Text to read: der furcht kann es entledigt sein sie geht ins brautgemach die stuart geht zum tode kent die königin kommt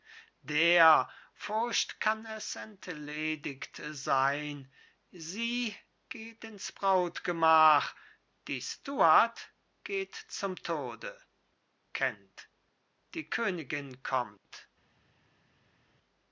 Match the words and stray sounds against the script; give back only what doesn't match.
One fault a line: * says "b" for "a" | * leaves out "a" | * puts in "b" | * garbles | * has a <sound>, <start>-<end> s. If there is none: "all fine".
all fine